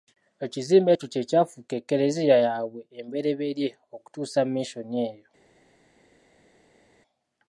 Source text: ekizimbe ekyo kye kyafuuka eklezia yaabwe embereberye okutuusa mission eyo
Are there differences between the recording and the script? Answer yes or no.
no